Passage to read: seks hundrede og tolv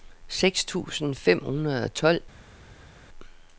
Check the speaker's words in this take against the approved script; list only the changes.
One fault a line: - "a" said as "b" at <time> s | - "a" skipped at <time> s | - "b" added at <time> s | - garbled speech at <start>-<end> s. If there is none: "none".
- "tusind fem" added at 0.7 s